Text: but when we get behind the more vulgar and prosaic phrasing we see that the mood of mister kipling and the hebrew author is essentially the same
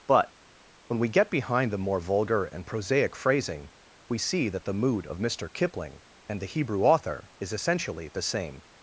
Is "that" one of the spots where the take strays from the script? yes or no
no